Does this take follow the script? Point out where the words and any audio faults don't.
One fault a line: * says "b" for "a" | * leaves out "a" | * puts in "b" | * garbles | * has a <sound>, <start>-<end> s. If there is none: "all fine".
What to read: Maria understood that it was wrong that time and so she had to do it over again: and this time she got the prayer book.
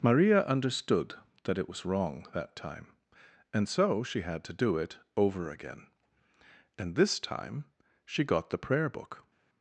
all fine